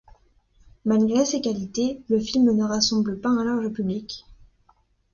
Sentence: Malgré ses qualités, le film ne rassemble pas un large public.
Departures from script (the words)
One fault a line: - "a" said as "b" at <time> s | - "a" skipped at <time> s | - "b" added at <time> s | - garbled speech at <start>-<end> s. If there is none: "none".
none